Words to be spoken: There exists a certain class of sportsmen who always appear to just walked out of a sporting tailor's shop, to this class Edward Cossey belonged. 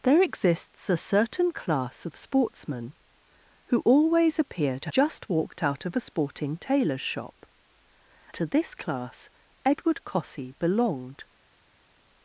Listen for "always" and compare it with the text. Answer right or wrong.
right